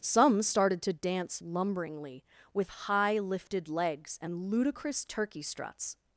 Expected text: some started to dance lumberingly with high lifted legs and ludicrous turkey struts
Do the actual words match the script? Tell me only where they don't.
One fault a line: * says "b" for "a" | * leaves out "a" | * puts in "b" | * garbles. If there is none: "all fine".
all fine